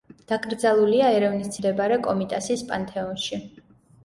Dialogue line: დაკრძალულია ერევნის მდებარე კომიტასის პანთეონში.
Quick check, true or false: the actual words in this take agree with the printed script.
true